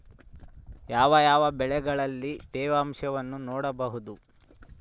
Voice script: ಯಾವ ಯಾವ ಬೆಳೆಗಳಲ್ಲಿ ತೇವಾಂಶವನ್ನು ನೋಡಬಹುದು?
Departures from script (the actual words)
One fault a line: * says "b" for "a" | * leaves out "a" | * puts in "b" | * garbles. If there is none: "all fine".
all fine